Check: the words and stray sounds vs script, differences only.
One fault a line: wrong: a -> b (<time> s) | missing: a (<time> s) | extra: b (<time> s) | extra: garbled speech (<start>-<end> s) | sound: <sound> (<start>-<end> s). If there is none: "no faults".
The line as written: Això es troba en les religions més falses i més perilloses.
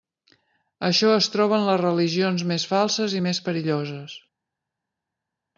no faults